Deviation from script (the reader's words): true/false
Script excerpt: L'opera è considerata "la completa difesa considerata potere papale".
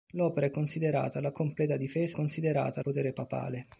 false